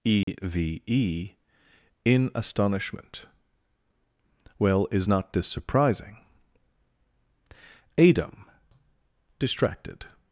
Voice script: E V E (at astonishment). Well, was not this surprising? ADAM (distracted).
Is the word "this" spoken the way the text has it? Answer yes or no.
yes